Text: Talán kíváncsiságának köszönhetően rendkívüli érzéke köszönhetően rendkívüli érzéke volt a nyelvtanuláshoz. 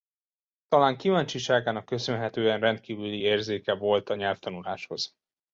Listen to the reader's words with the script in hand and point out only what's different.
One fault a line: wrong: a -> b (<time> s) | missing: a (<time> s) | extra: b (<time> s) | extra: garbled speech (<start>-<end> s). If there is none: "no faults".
missing: köszönhetően rendkívüli érzéke (3.7 s)